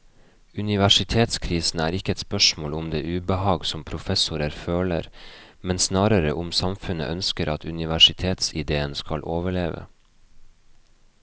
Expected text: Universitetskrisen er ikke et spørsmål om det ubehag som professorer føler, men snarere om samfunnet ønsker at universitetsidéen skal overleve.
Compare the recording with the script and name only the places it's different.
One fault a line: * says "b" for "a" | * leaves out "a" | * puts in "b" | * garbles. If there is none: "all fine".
all fine